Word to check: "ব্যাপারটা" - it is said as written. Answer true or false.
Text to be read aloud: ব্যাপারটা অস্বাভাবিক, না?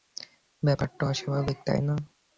true